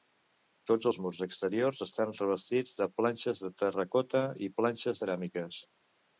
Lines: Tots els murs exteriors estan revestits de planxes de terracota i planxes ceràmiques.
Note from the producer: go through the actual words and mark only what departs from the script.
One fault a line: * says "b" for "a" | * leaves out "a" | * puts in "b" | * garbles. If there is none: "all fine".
all fine